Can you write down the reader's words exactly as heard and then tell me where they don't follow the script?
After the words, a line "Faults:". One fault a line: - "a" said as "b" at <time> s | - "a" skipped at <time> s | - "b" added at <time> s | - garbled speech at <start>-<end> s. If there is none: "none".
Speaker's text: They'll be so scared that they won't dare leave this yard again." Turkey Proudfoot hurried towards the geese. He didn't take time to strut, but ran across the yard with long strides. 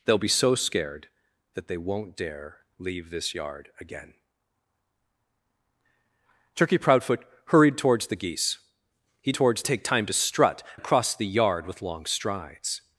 They'll be so scared that they won't dare leave this yard again." Turkey Proudfoot hurried towards the geese. He towards take time to strut, across the yard with long strides.
Faults:
- "didn't" said as "towards" at 9.3 s
- "but ran" skipped at 10.6 s